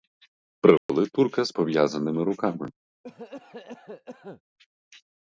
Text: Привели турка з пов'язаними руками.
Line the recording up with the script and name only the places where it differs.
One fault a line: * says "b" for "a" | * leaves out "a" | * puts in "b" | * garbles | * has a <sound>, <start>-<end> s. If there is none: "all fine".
* has a dropout, 0.8-0.9 s
* has a cough, 3.0-4.4 s